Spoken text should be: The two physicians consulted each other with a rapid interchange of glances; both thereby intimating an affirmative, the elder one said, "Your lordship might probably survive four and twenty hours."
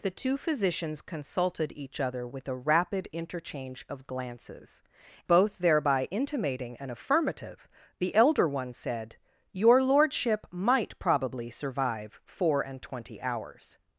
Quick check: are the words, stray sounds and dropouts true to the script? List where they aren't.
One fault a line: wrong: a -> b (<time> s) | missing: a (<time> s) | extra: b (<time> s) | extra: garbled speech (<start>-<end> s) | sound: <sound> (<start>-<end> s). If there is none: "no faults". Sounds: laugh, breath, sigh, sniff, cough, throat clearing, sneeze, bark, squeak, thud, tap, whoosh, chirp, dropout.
no faults